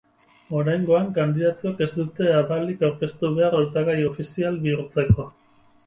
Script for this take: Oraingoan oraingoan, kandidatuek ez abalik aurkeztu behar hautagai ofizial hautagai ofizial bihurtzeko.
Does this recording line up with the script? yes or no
no